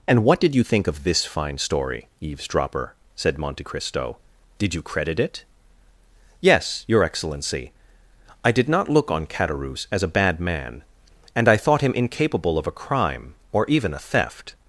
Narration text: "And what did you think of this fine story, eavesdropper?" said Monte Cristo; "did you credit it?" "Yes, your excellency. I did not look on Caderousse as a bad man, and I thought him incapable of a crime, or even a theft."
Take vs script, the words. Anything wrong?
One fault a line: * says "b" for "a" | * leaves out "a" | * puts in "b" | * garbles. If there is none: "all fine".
all fine